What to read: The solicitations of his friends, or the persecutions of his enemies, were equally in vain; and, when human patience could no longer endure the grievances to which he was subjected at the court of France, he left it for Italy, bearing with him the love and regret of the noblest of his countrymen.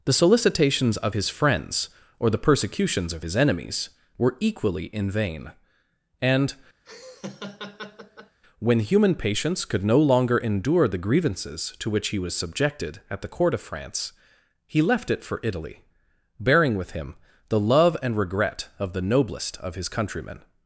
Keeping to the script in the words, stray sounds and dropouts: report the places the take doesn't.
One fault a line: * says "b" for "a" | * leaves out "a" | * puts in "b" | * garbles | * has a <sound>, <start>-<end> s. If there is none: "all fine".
* has a laugh, 6.8-8.4 s